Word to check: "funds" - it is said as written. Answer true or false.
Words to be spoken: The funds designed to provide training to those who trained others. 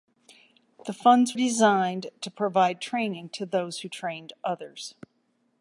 true